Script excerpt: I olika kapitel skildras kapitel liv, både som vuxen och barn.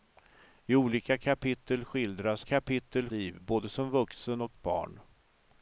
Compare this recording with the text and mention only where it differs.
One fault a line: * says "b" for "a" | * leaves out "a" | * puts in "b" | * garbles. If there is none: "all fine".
all fine